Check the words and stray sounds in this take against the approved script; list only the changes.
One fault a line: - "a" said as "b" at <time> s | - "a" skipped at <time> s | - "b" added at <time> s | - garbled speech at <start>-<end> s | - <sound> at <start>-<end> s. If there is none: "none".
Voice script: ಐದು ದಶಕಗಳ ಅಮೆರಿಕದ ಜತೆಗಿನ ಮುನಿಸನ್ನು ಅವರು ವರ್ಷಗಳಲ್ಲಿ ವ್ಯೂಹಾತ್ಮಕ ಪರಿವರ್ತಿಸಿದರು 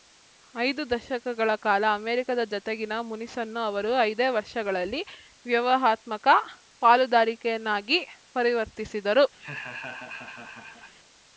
- "ಕಾಲ" added at 1.6 s
- "ಐದೇ" added at 4.0 s
- "ಪಾಲುದಾರಿಕೆಯನ್ನಾಗಿ" added at 6.8 s
- laugh at 9.4-10.9 s